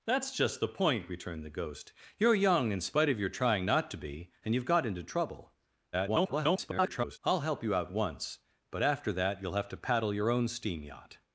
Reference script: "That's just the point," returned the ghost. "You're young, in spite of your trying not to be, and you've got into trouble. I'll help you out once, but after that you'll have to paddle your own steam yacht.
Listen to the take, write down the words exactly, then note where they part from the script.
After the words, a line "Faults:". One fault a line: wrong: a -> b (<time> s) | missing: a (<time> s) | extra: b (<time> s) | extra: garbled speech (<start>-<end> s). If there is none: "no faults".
"That's just the point," returned the ghost. "You're young, in spite of your trying not to be, and you've got into trouble. [garbled] I'll help you out once, but after that you'll have to paddle your own steam yacht.
Faults:
extra: garbled speech (5.9-7.2 s)